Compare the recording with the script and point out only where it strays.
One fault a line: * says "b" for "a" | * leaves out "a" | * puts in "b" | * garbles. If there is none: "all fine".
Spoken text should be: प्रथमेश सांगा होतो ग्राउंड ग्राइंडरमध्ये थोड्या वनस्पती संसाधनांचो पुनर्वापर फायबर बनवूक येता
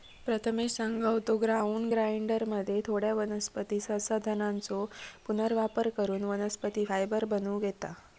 * puts in "करून वनस्पती"